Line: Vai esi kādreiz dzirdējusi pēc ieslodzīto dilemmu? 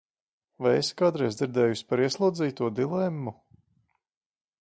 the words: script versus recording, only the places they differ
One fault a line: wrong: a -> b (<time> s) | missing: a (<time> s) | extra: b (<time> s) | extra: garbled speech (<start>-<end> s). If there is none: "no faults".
wrong: pēc -> par (1.9 s)